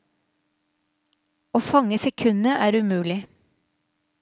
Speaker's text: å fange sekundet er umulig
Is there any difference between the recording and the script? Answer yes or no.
no